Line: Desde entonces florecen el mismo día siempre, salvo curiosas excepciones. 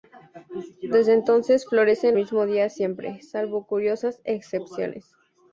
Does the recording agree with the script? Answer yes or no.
no